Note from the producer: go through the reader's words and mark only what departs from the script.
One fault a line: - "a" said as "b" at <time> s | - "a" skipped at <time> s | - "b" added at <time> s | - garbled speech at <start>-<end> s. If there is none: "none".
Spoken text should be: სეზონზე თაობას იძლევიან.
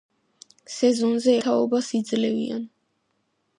none